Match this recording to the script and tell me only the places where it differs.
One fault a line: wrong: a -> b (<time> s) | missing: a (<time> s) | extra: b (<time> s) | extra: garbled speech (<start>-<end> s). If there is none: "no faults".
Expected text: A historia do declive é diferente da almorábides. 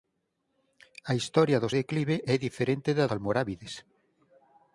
no faults